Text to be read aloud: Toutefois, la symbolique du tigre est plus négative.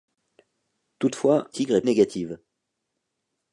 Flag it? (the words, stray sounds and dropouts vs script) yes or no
yes